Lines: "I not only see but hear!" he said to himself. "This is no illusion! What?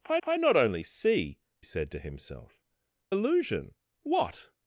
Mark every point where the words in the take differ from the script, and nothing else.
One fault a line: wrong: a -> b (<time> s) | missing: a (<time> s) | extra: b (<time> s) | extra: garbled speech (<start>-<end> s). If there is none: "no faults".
extra: I (0.2 s)
missing: but hear he (1.4 s)
missing: This is no (2.6 s)